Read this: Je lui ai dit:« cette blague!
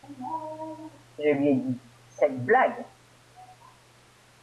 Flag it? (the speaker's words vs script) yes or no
no